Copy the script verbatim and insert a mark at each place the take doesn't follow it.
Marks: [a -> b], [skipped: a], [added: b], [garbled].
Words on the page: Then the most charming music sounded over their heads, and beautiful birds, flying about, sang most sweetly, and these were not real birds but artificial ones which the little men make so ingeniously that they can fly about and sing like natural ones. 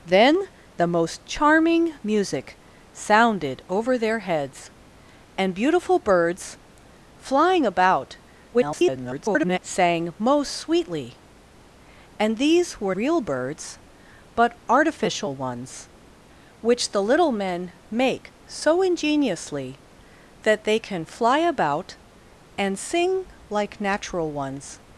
Then the most charming music sounded over their heads, and beautiful birds, flying about, [garbled] sang most sweetly, and these were [skipped: not] real birds but artificial ones which the little men make so ingeniously that they can fly about and sing like natural ones.